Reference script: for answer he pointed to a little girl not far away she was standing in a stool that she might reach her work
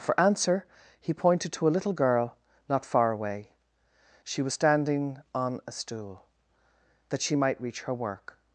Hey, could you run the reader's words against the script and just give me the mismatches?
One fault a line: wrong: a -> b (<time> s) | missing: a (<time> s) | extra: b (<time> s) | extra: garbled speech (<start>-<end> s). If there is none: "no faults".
wrong: in -> on (5.3 s)